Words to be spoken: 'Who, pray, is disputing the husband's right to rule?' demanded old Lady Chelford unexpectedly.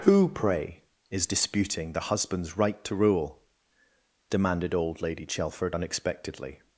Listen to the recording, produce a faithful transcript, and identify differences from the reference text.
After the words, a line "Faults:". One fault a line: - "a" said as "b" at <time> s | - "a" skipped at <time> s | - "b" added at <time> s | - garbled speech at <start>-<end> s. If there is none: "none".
'Who, pray, is disputing the husband's right to rule?' demanded old Lady Chelford unexpectedly.
Faults:
none